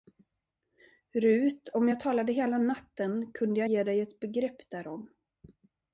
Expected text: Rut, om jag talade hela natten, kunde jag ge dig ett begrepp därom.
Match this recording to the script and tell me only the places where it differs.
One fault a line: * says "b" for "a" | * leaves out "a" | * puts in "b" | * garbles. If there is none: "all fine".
all fine